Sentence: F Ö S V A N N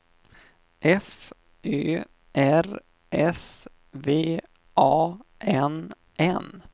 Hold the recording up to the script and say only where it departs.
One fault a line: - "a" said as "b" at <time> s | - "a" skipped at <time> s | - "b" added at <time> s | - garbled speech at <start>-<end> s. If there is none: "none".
- "R" added at 2.4 s